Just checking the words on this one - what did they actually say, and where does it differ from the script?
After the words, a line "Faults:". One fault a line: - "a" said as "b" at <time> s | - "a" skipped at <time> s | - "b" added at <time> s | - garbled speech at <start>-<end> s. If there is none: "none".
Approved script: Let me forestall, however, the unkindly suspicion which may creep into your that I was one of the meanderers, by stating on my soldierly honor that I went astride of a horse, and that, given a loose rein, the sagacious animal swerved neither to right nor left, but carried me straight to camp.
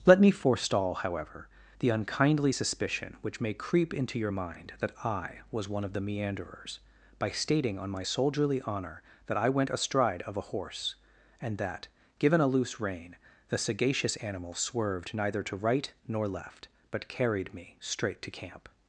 Let me forestall, however, the unkindly suspicion which may creep into your mind that I was one of the meanderers, by stating on my soldierly honor that I went astride of a horse, and that, given a loose rein, the sagacious animal swerved neither to right nor left, but carried me straight to camp.
Faults:
- "mind" added at 4.3 s